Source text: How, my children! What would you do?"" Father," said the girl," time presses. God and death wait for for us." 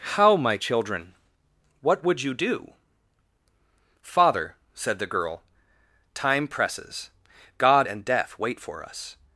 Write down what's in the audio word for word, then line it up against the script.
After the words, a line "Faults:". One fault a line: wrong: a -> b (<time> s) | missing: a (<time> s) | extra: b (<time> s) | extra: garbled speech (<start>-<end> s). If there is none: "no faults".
How, my children! What would you do?"" Father," said the girl," time presses. God and death wait for us."
Faults:
missing: for (8.8 s)